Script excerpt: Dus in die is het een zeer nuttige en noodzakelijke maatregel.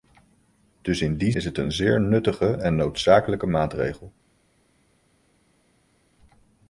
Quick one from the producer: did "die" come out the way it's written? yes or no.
yes